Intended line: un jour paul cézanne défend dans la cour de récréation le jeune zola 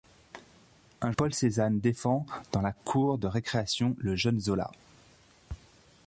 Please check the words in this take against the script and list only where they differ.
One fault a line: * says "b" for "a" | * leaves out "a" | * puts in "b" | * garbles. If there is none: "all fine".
* leaves out "jour"